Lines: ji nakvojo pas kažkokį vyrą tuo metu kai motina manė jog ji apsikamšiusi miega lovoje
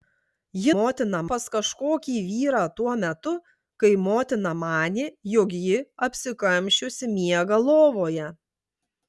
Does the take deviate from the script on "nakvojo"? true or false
true